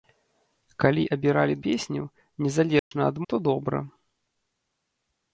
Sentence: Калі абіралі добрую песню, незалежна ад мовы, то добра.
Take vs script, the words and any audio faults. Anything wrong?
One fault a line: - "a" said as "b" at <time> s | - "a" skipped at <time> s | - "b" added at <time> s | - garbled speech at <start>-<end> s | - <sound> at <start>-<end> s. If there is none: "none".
- "добрую" skipped at 1.5 s
- dropout at 2.8-2.9 s
- "мовы" skipped at 3.2 s